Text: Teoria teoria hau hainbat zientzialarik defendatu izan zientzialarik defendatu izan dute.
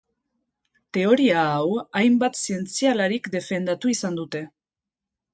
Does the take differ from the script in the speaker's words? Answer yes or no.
yes